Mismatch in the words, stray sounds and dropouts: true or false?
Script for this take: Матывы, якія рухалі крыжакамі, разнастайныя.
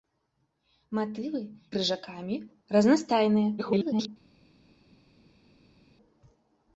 true